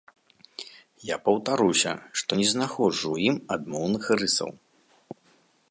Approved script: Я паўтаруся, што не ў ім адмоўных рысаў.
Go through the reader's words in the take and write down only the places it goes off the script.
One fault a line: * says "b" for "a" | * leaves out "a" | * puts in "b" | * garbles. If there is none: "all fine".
* puts in "знаходжу"